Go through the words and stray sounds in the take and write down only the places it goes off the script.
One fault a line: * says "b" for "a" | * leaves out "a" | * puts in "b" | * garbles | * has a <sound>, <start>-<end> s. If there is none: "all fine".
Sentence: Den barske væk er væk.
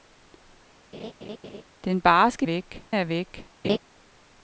* has a laugh, 0.9-1.6 s
* has a laugh, 3.6-3.8 s